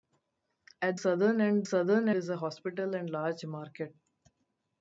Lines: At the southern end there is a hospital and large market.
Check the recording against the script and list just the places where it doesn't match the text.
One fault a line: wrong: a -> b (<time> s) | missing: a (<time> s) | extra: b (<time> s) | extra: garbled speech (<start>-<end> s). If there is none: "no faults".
missing: the (1.0 s)
wrong: there -> southern (1.6 s)